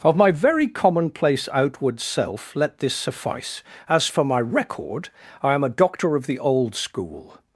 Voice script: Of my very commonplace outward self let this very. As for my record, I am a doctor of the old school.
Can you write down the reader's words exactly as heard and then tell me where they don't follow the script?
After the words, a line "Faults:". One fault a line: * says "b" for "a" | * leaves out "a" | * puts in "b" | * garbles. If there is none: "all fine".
Of my very commonplace outward self let this suffice. As for my record, I am a doctor of the old school.
Faults:
* says "suffice" for "very"